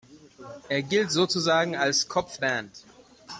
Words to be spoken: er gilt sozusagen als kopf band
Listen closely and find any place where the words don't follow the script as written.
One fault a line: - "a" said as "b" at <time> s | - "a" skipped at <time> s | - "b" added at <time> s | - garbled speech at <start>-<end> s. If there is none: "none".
none